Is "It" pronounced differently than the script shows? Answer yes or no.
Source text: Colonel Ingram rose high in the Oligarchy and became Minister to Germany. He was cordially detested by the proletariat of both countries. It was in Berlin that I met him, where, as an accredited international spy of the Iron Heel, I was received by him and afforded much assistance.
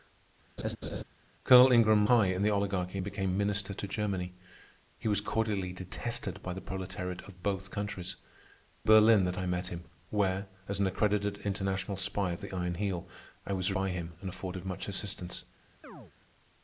yes